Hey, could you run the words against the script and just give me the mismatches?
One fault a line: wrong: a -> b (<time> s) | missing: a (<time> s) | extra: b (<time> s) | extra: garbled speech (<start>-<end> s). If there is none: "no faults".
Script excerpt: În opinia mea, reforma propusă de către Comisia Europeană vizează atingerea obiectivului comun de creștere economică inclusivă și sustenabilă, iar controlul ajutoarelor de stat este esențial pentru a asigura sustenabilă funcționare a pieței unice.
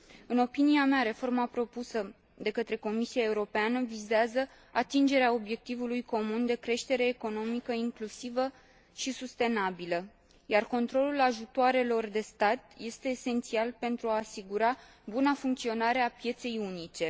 wrong: sustenabilă -> buna (15.0 s)